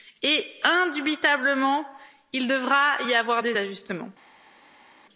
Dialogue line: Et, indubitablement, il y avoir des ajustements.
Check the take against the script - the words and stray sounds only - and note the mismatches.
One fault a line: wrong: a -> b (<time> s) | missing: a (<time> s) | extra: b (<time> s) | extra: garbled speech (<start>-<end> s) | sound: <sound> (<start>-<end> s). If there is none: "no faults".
extra: devra (2.5 s)